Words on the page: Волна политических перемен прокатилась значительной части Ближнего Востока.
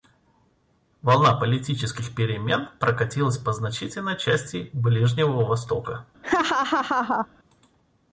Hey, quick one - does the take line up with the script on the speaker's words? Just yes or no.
no